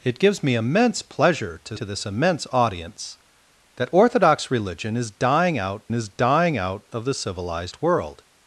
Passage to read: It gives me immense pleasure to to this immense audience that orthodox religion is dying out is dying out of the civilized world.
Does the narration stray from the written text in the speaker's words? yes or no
no